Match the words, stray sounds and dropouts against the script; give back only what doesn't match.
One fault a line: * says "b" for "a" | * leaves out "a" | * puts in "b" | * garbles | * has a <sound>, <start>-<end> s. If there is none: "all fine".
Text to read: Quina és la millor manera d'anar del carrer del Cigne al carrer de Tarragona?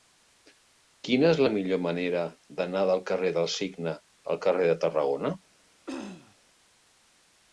* has a throat clearing, 5.9-6.4 s